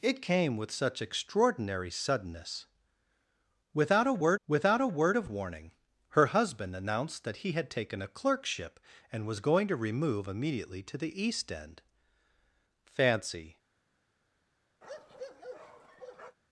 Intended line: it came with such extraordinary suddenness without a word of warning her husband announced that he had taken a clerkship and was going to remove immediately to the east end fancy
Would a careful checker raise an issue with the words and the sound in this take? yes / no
yes